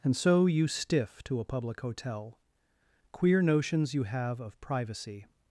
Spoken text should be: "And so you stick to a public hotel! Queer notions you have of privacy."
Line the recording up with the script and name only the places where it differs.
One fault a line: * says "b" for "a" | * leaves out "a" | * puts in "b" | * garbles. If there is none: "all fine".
* says "stiff" for "stick"